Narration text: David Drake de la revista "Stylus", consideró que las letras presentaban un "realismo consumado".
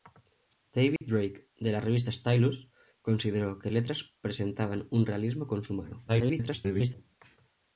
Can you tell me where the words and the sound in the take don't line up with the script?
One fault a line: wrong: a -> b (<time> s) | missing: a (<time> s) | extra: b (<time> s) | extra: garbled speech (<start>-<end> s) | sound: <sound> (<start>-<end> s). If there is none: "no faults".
sound: dropout (1.0-1.0 s)
missing: las (3.7 s)
extra: garbled speech (6.1-6.9 s)